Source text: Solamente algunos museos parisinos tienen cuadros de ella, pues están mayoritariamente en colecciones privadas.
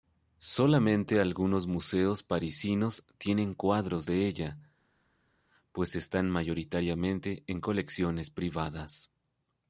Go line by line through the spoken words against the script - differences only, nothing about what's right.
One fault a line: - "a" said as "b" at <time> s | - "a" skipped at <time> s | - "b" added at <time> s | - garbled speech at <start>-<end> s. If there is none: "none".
none